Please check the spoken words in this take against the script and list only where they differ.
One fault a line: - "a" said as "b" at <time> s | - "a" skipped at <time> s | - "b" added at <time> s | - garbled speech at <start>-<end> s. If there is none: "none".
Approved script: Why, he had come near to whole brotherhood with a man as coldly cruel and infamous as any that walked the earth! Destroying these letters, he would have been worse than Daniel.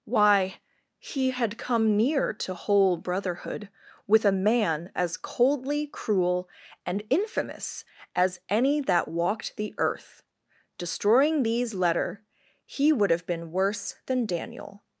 - "letters" said as "letter" at 11.7 s